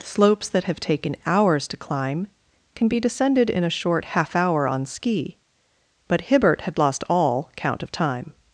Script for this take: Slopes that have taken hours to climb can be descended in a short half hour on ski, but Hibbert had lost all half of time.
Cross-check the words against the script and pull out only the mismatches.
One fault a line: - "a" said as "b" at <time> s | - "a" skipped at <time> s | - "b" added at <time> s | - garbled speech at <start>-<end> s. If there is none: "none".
- "half" said as "count" at 7.5 s